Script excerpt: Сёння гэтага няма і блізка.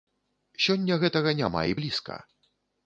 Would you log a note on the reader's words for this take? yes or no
no